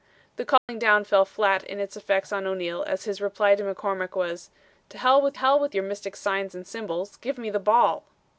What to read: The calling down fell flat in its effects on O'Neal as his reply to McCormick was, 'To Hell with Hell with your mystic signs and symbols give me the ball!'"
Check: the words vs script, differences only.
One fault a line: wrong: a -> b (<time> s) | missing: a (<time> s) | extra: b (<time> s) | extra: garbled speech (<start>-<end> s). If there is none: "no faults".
no faults